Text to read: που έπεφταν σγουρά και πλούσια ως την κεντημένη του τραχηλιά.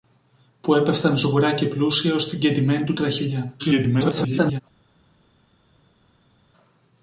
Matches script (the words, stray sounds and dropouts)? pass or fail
fail